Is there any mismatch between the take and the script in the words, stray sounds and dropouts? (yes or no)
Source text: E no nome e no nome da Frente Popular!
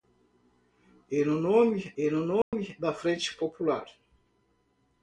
yes